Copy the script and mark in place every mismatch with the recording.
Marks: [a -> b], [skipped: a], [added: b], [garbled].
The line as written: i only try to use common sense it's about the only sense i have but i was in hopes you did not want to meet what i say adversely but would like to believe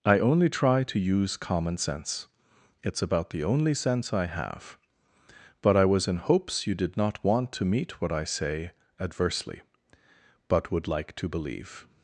i only try to use common sense it's about the only sense i have but i was in hopes you did not want to meet what i say adversely but would like to believe